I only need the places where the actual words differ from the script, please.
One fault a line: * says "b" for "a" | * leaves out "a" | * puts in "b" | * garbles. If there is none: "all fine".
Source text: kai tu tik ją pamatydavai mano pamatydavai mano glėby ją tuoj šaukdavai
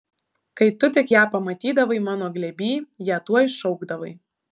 * leaves out "pamatydavai mano"